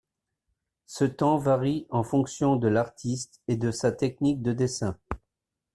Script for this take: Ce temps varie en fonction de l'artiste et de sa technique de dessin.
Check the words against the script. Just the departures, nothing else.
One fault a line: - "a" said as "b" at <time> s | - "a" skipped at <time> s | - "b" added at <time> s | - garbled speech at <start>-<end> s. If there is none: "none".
none